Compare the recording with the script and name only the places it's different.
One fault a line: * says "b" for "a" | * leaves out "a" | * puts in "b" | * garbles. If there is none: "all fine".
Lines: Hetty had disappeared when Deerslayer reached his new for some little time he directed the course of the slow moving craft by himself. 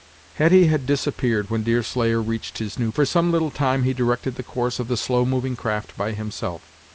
all fine